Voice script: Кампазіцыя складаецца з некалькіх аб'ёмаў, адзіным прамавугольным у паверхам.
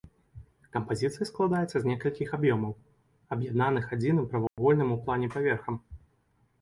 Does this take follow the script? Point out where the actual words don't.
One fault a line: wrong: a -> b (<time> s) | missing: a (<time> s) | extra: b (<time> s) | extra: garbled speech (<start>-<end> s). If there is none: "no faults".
extra: аб'яднаных (3.4 s)
extra: плане (5.1 s)